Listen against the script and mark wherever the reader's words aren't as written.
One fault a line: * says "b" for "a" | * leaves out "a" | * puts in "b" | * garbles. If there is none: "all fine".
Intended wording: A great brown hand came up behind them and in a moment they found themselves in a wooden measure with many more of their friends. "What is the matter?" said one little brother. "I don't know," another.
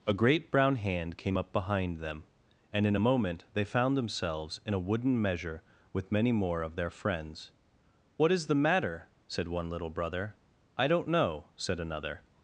* puts in "said"